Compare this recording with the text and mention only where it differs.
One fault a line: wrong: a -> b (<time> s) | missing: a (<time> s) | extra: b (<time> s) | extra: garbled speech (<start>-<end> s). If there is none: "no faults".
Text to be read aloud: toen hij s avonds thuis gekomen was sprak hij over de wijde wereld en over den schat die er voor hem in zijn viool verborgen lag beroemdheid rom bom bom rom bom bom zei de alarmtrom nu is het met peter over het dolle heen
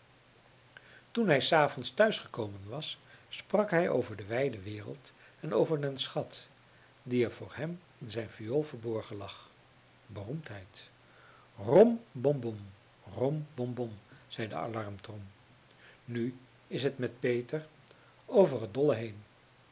no faults